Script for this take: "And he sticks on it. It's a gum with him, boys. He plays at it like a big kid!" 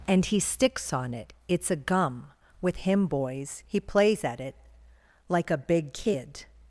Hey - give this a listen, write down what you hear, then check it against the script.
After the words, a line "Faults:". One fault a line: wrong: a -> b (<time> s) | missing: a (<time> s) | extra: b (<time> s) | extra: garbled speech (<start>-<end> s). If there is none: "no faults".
"And he sticks on it. It's a gum with him, boys. He plays at it like a big kid!"
Faults:
no faults